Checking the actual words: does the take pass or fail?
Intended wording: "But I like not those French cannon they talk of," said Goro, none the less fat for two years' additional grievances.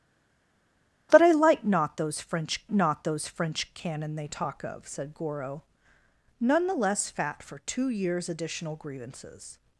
fail